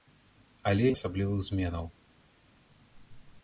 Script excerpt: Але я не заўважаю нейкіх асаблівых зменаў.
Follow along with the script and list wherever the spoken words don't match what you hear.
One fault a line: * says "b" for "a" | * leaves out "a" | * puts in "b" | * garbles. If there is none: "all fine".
* leaves out "не заўважаю нейкіх"